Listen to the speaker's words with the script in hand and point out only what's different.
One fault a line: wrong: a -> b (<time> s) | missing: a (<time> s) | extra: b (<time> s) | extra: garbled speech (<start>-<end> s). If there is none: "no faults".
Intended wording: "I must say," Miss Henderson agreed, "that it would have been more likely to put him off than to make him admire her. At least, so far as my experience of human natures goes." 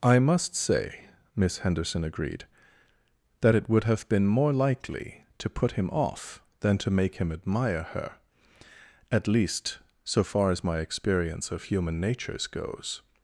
no faults